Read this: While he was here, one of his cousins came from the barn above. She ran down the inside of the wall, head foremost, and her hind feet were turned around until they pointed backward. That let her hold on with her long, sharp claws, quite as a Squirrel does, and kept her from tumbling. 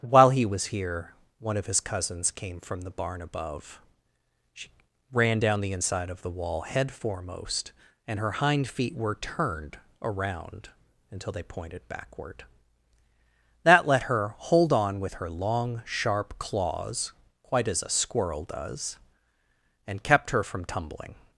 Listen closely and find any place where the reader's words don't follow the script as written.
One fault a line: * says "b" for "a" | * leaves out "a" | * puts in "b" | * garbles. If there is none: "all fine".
all fine